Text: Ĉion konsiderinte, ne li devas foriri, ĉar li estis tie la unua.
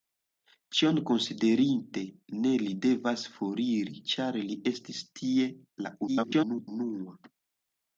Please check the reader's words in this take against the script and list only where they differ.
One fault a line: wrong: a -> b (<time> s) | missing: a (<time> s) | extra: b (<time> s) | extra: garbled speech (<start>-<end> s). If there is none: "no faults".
extra: garbled speech (6.1-6.7 s)